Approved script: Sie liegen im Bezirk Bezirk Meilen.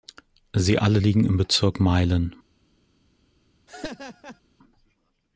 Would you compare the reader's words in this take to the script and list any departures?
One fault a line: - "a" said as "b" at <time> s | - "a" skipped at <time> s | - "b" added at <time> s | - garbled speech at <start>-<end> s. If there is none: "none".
- "alle" added at 0.8 s
- "Bezirk" skipped at 1.8 s